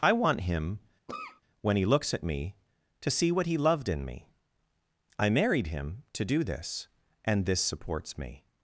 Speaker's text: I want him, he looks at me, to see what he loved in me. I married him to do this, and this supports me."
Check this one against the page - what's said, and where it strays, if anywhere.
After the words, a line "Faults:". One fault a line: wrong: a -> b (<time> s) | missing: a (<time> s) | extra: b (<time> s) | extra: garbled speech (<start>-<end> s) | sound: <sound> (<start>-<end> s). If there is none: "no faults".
I want him, when he looks at me, to see what he loved in me. I married him to do this, and this supports me."
Faults:
sound: cough (1.1-1.4 s)
extra: when (1.6 s)